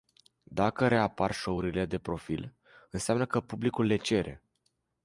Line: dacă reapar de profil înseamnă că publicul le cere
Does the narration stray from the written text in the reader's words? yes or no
yes